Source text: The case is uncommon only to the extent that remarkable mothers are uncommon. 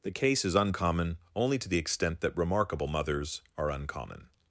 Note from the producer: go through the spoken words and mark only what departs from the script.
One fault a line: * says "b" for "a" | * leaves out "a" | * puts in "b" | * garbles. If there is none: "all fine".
all fine